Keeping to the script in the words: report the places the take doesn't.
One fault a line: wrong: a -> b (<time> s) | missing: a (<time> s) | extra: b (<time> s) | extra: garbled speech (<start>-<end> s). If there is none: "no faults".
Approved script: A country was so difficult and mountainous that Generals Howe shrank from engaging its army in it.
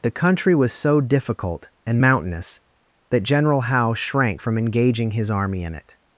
wrong: A -> The (0.0 s)
wrong: Generals -> General (3.2 s)
wrong: its -> his (5.1 s)